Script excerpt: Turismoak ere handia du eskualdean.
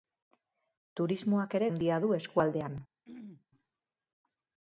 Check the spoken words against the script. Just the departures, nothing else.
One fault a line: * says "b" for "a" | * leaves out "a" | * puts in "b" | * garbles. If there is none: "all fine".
all fine